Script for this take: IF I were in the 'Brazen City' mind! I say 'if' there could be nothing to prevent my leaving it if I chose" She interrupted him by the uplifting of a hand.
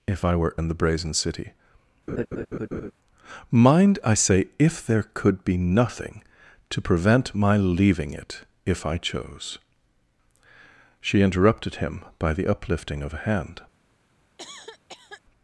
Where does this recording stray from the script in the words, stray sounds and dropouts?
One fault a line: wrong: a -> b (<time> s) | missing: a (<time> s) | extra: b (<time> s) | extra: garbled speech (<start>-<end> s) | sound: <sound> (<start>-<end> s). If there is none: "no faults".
sound: laugh (2.1-2.9 s)
sound: cough (14.4-15.2 s)